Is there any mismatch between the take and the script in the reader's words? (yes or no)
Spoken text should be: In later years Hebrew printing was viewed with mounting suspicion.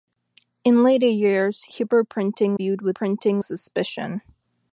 yes